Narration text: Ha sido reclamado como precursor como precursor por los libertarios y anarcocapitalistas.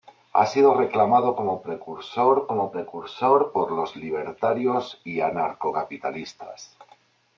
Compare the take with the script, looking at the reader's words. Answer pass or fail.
pass